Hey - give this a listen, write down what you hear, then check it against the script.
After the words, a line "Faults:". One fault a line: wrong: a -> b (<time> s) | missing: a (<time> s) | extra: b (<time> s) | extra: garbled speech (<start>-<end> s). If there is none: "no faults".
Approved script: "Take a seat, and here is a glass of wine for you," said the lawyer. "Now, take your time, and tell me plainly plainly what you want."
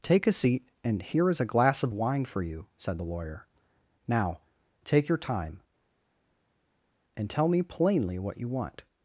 "Take a seat, and here is a glass of wine for you," said the lawyer. "Now, take your time, and tell me plainly what you want."
Faults:
missing: plainly (8.2 s)